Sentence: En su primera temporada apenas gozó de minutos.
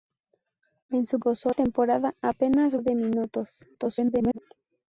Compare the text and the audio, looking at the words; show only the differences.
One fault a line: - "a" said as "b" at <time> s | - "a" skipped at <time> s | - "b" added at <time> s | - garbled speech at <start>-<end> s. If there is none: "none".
- "primera" said as "gozó" at 1.2 s
- "gozó" skipped at 2.8 s
- garbled speech at 3.7-4.4 s